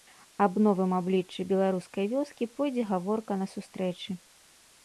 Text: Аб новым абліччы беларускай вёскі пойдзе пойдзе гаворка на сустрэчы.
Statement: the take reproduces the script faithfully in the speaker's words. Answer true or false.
false